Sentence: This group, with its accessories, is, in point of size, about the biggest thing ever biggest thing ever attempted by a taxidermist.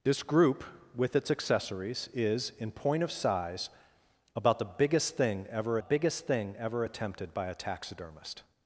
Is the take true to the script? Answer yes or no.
yes